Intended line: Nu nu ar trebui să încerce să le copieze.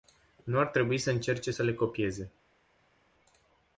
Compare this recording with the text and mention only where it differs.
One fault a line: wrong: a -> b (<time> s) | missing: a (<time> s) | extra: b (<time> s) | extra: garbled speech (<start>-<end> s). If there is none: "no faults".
missing: nu (0.6 s)